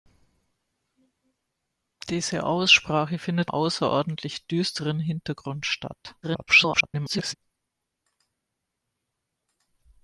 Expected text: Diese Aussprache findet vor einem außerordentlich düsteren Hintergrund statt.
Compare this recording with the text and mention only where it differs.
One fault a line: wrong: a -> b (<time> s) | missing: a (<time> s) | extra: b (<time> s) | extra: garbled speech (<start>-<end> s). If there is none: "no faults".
missing: vor einem (3.5 s)
extra: garbled speech (6.2-7.3 s)